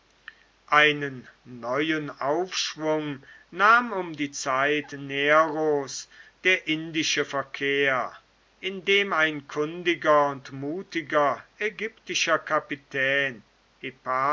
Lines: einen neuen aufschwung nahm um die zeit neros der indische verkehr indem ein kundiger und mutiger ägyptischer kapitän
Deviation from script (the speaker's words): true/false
false